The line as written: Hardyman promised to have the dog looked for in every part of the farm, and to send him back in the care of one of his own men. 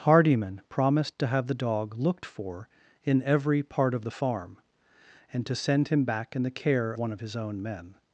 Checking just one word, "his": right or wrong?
right